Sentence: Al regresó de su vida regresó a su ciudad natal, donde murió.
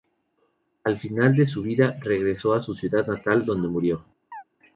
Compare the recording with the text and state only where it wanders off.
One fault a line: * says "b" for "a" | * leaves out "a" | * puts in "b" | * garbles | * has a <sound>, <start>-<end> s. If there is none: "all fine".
* says "final" for "regresó"
* has a chirp, 4.3-4.4 s